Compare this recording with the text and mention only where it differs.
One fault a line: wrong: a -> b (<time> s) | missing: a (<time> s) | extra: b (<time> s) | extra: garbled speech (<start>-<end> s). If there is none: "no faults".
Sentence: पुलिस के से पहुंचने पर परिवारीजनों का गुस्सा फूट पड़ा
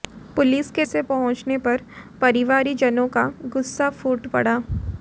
no faults